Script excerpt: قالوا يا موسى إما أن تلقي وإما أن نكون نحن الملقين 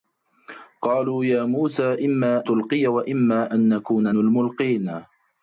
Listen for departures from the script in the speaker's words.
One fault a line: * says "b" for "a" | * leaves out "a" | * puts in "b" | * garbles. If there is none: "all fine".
* leaves out "أن"
* leaves out "نحن"